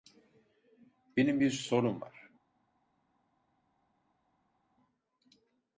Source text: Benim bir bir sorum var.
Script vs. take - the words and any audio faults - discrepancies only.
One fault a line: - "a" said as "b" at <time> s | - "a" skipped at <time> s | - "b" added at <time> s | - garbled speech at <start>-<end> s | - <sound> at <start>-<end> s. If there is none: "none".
- "bir" skipped at 1.5 s